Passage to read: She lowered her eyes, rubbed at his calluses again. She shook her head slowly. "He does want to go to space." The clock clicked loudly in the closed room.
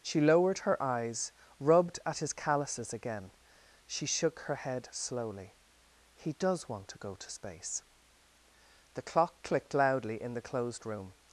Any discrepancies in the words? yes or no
no